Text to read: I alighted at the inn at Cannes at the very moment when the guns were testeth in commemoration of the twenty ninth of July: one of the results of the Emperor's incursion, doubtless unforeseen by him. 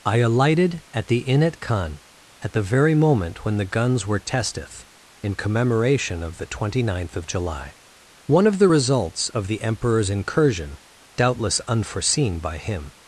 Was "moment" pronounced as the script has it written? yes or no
yes